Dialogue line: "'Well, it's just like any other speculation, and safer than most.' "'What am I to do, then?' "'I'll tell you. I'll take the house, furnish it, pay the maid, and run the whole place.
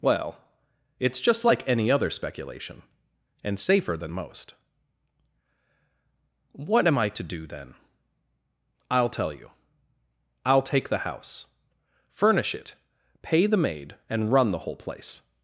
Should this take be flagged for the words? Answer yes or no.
no